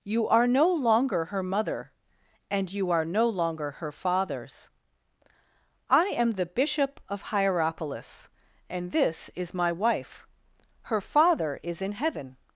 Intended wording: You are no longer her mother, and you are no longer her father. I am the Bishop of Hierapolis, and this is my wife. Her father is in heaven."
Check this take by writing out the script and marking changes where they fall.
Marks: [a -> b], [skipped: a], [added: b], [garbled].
You are no longer her mother, and you are no longer her [father. -> fathers] I am the Bishop of Hierapolis, and this is my wife. Her father is in heaven."